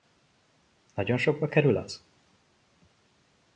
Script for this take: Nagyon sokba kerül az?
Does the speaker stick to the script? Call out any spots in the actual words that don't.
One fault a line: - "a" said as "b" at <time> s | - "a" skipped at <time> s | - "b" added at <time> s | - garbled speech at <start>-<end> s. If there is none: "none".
none